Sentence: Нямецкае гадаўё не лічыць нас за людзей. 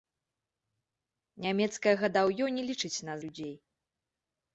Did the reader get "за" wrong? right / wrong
wrong